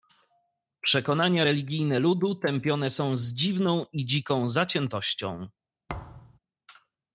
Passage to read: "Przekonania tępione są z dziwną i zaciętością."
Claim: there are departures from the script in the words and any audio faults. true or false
true